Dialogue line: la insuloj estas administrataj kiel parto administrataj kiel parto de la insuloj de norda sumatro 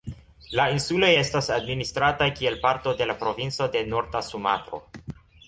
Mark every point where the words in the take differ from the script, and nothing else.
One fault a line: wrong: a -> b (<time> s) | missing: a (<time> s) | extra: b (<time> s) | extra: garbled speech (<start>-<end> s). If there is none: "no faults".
missing: administrataj kiel parto (3.0 s)
wrong: insuloj -> provinco (3.3 s)